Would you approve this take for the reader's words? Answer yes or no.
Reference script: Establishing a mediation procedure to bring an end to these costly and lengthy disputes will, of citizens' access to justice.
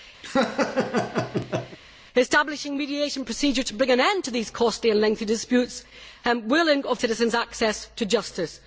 yes